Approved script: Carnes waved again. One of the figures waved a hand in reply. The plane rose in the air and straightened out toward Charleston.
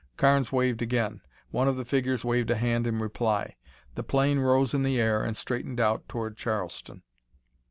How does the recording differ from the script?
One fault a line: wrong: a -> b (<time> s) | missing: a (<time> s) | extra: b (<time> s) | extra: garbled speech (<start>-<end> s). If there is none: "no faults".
no faults